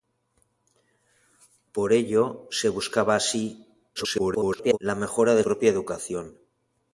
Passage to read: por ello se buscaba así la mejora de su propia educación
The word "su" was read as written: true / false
false